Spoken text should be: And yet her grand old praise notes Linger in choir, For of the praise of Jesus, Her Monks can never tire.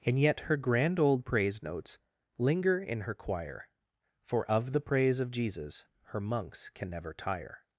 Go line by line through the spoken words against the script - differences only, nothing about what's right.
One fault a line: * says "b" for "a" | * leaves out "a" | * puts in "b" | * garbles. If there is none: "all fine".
* puts in "her"